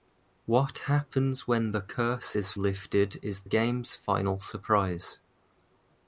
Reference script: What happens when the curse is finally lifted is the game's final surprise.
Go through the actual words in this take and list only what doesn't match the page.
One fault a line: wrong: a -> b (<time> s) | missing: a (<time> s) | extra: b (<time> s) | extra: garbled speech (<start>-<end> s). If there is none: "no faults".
missing: finally (2.5 s)
missing: the (3.4 s)